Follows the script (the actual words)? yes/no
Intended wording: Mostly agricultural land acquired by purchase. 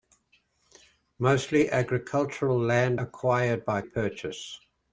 yes